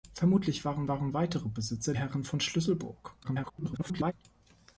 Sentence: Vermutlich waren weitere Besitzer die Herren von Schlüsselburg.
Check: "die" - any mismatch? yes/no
yes